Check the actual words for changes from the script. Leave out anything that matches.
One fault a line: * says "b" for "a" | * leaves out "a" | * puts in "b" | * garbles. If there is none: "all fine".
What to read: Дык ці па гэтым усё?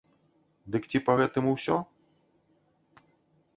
all fine